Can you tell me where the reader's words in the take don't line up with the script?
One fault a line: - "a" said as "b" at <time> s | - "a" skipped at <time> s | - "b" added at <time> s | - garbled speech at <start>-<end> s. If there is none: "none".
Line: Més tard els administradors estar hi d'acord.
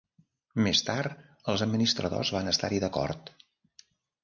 - "van" added at 2.4 s